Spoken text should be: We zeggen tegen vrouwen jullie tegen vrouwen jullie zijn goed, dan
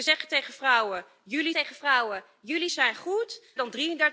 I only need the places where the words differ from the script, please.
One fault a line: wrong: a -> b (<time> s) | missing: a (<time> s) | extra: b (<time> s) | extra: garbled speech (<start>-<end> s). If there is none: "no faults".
no faults